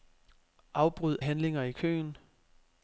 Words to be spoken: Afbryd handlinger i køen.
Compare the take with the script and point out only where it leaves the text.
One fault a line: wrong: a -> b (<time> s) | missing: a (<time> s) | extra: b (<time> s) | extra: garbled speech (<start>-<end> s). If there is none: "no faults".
no faults